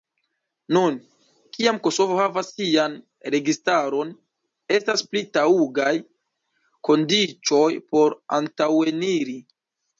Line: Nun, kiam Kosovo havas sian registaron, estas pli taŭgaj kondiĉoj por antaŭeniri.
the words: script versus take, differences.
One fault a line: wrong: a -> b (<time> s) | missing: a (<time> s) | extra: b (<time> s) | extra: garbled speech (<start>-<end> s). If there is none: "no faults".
no faults